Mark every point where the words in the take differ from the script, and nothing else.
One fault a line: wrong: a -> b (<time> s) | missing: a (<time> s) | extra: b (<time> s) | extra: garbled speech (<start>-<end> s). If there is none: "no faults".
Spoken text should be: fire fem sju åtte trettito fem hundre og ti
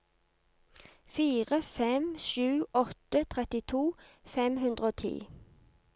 no faults